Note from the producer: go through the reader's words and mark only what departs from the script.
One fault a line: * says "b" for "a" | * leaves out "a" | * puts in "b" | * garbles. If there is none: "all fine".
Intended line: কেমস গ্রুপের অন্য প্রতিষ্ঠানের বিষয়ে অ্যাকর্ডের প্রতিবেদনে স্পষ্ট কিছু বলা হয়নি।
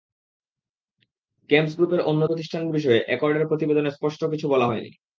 all fine